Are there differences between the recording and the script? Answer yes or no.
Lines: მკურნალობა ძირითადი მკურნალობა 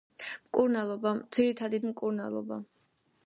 no